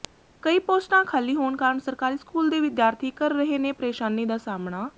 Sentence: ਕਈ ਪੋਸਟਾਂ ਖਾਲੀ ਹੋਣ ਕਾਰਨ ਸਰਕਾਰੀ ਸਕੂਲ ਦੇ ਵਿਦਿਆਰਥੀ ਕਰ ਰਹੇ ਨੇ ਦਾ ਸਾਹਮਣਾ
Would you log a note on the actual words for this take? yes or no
yes